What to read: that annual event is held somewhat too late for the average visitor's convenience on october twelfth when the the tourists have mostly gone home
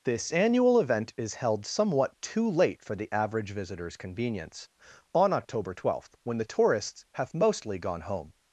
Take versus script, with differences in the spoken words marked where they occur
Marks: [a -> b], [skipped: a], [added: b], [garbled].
[that -> this] annual event is held somewhat too late for the average visitor's convenience on october twelfth when the [skipped: the] tourists have mostly gone home